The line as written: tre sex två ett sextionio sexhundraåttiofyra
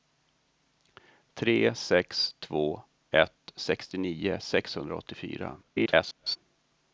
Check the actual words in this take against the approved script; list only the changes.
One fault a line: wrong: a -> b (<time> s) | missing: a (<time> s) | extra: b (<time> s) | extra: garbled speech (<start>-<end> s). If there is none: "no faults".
extra: garbled speech (5.6-6.4 s)